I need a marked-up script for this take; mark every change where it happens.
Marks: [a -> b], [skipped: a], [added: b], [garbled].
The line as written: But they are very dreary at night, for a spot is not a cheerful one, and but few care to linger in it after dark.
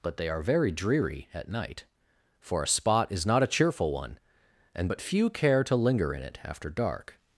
But they are very dreary at night, for a spot is not a cheerful one, and but few care to linger in it after dark.